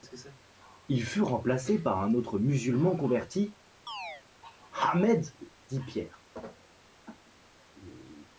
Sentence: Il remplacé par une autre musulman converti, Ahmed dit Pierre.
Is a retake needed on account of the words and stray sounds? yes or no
yes